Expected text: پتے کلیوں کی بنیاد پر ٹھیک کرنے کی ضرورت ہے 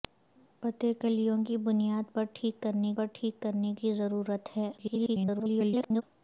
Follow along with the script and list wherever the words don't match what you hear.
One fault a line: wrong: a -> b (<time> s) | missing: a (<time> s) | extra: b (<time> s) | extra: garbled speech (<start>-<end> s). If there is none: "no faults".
extra: پر ٹھیک کرنے (2.9 s)
extra: garbled speech (4.8-6.0 s)